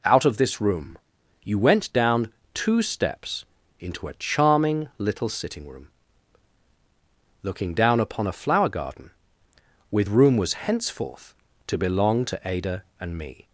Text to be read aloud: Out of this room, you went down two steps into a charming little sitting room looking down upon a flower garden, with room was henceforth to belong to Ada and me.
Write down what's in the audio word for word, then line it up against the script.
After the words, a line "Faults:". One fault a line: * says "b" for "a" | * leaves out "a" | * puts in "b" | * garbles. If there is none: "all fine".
Out of this room, you went down two steps into a charming little sitting room looking down upon a flower garden, with room was henceforth to belong to Ada and me.
Faults:
all fine